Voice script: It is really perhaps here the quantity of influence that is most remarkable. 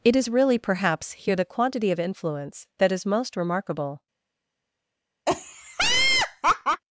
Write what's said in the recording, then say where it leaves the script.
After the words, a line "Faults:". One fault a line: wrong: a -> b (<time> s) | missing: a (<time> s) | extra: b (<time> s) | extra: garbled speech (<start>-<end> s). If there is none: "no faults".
It is really perhaps here the quantity of influence that is most remarkable.
Faults:
no faults